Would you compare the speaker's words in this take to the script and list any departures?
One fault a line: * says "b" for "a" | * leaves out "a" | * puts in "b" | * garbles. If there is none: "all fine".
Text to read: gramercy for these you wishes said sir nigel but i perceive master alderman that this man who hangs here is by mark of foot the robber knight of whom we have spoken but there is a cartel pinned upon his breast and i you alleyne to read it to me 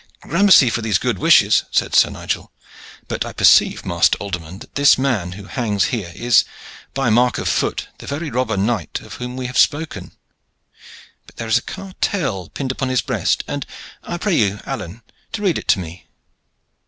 * says "good" for "you"
* puts in "very"
* puts in "pray"